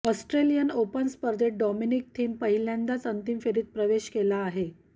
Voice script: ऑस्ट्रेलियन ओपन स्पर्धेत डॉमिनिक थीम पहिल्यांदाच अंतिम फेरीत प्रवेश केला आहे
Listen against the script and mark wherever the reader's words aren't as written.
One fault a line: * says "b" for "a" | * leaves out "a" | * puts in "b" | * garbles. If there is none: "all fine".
all fine